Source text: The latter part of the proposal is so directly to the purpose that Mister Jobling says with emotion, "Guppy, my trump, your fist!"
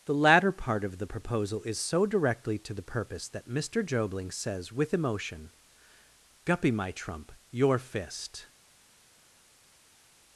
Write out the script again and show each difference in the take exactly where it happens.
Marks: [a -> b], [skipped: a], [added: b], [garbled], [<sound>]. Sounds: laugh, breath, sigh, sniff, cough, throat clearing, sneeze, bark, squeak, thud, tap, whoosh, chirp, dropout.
The latter part of the proposal is so directly to the purpose that Mister Jobling says with emotion, "Guppy, my trump, your fist!"